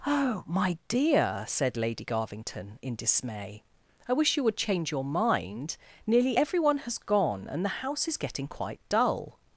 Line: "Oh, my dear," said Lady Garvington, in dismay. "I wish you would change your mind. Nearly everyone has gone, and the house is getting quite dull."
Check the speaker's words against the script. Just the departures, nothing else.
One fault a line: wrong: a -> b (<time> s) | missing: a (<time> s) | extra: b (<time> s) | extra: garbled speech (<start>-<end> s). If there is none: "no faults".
no faults